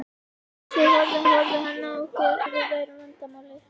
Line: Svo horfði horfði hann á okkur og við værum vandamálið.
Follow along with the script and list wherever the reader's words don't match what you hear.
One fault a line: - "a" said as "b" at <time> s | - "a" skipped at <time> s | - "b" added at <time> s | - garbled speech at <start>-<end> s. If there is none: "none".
none